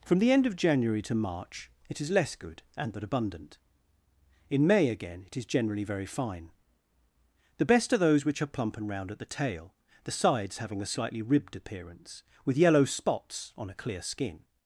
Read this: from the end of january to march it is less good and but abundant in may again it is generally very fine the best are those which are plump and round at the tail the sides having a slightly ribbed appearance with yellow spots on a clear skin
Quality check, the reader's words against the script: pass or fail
pass